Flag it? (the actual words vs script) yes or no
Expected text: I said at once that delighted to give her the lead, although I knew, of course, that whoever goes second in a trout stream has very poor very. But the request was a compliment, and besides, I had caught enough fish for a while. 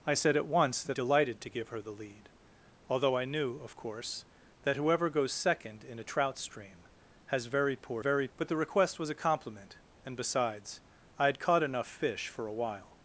no